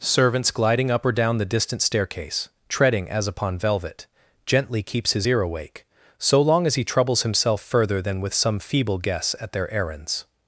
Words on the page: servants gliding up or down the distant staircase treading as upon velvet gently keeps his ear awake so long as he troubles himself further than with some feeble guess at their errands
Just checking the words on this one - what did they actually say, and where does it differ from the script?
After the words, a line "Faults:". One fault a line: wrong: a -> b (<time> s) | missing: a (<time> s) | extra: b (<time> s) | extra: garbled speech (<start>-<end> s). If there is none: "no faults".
servants gliding up or down the distant staircase treading as upon velvet gently keeps his ear awake so long as he troubles himself further than with some feeble guess at their errands
Faults:
no faults